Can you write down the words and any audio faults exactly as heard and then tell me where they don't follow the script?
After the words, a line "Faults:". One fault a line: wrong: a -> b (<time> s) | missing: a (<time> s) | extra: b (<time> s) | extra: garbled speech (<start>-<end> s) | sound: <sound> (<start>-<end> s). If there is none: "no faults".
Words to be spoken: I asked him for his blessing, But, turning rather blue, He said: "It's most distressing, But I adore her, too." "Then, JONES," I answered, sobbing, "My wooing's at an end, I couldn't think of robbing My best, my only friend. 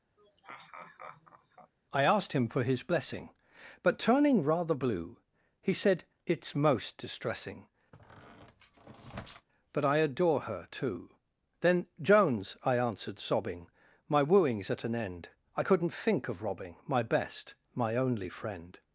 I asked him for his blessing, But, turning rather blue, He said: "It's most distressing, But I adore her, too." "Then, JONES," I answered, sobbing, "My wooing's at an end, I couldn't think of robbing My best, my only friend.
Faults:
sound: laugh (0.2-1.7 s)
sound: squeak (7.9-9.5 s)